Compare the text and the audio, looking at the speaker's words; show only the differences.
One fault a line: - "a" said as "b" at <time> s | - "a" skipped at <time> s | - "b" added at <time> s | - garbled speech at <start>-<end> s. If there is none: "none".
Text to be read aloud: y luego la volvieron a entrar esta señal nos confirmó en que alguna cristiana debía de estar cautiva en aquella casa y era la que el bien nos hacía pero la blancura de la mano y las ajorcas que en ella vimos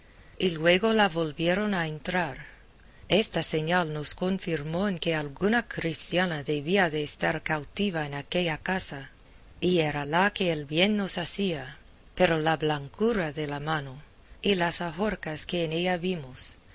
none